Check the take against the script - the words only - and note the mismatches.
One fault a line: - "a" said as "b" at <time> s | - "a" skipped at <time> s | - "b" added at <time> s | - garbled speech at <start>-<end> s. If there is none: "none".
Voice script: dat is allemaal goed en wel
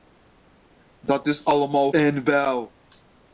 - "goed" skipped at 1.9 s